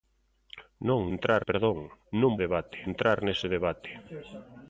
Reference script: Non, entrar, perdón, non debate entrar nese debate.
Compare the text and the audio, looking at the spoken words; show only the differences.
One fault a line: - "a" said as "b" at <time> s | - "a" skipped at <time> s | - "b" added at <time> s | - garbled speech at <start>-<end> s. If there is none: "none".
none